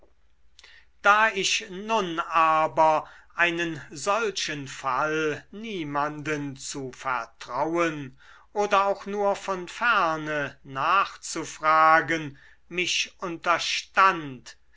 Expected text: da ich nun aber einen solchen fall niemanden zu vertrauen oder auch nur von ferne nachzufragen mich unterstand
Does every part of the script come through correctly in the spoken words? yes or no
yes